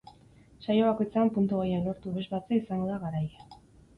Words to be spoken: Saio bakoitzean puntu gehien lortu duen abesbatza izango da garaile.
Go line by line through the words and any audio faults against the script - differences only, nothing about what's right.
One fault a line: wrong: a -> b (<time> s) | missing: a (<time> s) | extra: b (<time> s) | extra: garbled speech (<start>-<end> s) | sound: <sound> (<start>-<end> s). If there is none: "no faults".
missing: duen (2.1 s)